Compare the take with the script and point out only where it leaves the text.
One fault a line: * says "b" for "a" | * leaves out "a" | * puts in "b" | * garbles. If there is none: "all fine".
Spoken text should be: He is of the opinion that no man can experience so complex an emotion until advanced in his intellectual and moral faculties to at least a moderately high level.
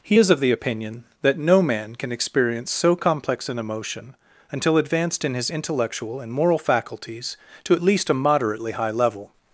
all fine